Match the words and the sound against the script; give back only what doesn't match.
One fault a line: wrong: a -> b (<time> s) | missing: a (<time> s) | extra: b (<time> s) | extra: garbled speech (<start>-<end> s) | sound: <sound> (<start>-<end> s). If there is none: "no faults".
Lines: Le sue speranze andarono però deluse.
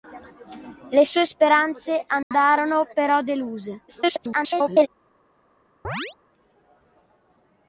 sound: dropout (2.2-2.3 s)
extra: garbled speech (3.9-4.9 s)
sound: chirp (5.8-6.2 s)